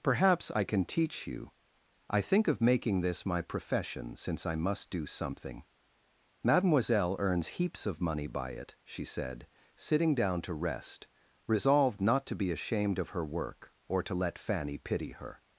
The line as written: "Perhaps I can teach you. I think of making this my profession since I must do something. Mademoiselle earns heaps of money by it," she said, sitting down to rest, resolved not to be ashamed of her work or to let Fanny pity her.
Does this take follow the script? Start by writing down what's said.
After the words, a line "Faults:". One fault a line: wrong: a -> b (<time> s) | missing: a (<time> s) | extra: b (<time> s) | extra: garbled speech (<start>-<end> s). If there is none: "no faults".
"Perhaps I can teach you. I think of making this my profession since I must do something. Mademoiselle earns heaps of money by it," she said, sitting down to rest, resolved not to be ashamed of her work or to let Fanny pity her.
Faults:
no faults